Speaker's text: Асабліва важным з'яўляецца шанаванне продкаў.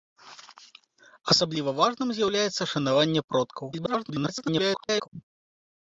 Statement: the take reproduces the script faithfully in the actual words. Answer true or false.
false